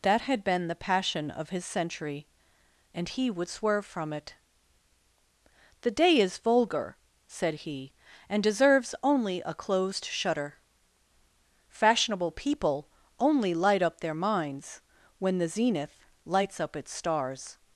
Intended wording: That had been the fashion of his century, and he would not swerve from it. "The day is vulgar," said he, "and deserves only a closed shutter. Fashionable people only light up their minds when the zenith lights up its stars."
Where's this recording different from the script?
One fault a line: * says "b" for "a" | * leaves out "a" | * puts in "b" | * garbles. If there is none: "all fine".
* says "passion" for "fashion"
* leaves out "not"